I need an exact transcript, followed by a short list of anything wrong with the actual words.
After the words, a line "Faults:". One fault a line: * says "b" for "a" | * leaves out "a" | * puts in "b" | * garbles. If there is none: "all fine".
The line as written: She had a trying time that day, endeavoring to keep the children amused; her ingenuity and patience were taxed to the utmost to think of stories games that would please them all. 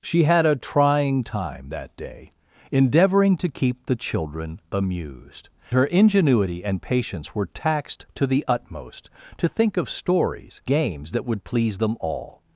She had a trying time that day, endeavoring to keep the children amused; her ingenuity and patience were taxed to the utmost to think of stories games that would please them all.
Faults:
all fine